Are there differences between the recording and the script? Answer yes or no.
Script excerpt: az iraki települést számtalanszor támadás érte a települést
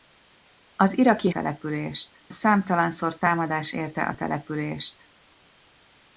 no